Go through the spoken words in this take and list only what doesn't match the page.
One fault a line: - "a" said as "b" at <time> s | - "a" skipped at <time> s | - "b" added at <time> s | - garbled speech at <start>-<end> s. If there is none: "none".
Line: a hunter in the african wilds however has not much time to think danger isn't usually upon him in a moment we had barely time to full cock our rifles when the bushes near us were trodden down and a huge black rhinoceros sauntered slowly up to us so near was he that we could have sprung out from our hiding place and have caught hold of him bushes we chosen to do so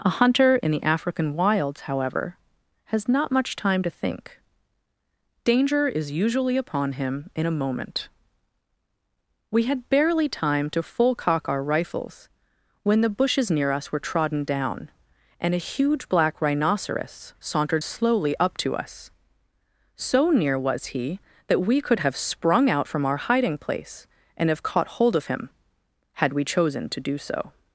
- "isn't" said as "is" at 5.9 s
- "bushes" said as "had" at 26.1 s